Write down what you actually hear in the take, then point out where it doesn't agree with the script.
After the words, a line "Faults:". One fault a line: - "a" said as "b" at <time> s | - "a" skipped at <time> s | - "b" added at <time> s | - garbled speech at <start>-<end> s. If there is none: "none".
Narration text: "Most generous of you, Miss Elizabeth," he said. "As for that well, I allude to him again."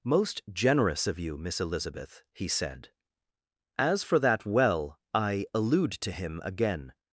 "Most generous of you, Miss Elizabeth," he said. "As for that well, I allude to him again."
Faults:
none